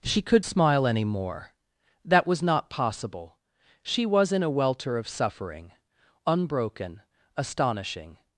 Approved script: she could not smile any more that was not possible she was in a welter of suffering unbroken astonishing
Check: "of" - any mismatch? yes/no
no